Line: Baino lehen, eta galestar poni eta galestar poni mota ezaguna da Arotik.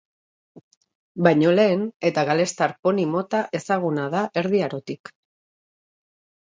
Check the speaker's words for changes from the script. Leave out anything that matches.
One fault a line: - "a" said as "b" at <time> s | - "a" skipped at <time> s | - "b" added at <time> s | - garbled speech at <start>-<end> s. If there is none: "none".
- "eta galestar poni" skipped at 3.1 s
- "Erdi" added at 4.5 s